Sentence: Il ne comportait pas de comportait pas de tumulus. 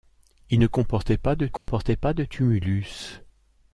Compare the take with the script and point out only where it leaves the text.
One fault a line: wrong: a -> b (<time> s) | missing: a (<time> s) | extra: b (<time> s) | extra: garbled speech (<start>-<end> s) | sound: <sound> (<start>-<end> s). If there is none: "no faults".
sound: dropout (1.6-1.7 s)